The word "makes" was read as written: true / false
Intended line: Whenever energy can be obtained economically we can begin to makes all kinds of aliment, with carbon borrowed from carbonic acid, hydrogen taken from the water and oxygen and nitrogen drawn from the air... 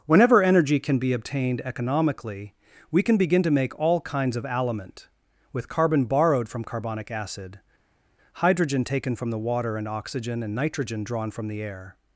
false